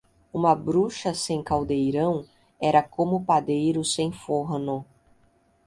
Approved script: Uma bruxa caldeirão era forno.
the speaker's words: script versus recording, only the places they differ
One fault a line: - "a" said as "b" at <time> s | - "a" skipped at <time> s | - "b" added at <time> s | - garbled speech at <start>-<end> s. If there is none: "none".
- "sem" added at 1.1 s
- "como padeiro sem" added at 2.8 s